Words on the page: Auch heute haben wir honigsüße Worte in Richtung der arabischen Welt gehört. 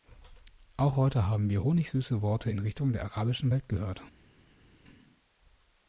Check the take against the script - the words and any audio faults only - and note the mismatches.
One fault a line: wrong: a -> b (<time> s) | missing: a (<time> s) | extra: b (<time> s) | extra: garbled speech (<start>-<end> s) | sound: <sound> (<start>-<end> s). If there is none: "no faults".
no faults